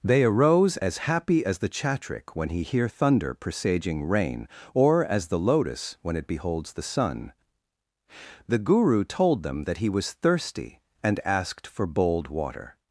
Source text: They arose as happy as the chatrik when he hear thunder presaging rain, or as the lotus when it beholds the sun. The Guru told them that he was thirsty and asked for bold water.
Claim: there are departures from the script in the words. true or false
false